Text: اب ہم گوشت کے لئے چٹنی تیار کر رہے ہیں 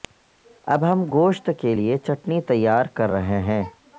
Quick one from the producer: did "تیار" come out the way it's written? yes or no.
yes